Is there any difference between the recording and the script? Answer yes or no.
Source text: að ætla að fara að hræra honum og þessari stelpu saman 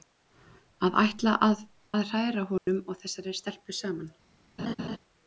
yes